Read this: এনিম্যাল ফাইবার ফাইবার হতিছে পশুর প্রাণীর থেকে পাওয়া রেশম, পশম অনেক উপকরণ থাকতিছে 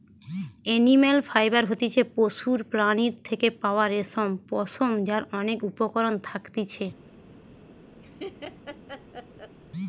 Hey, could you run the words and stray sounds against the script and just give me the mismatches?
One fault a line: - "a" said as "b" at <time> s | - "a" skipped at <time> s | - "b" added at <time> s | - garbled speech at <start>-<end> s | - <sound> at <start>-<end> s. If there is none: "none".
- "ফাইবার" skipped at 1.6 s
- "যার" added at 5.1 s
- laugh at 8.0-9.6 s